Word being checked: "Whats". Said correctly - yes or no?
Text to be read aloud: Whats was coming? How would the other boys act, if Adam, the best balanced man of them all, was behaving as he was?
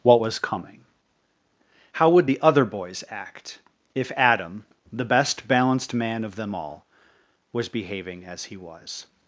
no